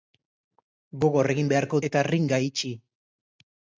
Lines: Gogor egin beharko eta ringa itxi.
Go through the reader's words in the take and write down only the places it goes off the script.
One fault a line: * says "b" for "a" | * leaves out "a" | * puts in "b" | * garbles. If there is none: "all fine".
all fine